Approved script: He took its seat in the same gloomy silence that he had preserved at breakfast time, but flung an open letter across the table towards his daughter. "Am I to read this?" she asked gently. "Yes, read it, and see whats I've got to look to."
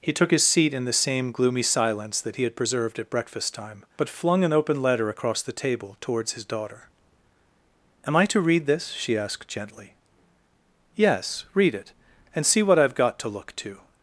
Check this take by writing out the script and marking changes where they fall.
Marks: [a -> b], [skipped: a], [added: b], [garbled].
He took [its -> his] seat in the same gloomy silence that he had preserved at breakfast time, but flung an open letter across the table towards his daughter. "Am I to read this?" she asked gently. "Yes, read it, and see [whats -> what] I've got to look to."